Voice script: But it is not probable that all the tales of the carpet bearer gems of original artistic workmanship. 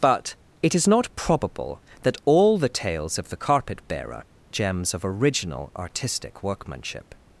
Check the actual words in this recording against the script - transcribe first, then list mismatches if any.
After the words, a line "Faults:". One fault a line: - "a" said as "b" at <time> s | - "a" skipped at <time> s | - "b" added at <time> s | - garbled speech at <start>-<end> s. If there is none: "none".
But it is not probable that all the tales of the carpet bearer gems of original artistic workmanship.
Faults:
none